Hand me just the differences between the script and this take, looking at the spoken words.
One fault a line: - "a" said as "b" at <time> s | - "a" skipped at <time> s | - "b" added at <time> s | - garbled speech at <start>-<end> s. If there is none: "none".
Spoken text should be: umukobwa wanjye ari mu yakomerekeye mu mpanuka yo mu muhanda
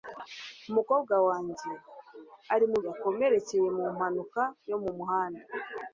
none